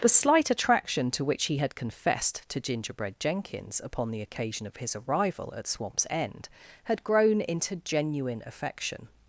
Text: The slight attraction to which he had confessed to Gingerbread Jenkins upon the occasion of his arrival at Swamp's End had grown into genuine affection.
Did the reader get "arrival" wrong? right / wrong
right